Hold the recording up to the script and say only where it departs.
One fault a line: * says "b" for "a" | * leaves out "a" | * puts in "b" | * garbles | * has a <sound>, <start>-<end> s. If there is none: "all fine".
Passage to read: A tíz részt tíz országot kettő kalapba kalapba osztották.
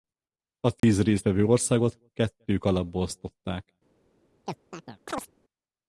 * has a dropout, 0.8-0.8 s
* says "vevő" for "tíz"
* leaves out "kalapba"
* has a chirp, 4.5-5.3 s